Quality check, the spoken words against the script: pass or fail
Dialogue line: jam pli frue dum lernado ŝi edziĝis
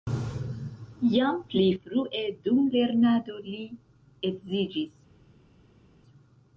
fail